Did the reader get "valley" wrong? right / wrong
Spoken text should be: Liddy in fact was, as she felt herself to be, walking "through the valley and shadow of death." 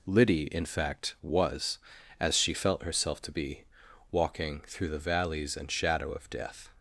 wrong